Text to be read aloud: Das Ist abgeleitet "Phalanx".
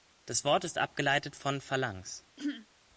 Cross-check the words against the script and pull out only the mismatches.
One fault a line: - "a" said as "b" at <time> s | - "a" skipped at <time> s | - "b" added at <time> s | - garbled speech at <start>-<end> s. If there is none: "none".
- "Wort" added at 0.4 s
- "von" added at 1.4 s